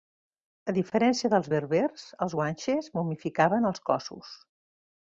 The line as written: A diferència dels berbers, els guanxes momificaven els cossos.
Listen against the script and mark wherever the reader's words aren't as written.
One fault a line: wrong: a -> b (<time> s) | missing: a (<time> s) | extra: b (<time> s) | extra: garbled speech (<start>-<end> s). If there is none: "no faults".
no faults